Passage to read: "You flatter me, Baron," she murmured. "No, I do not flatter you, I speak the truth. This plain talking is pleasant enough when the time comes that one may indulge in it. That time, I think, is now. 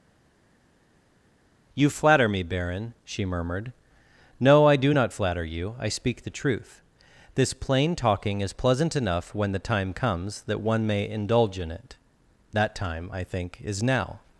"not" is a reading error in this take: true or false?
false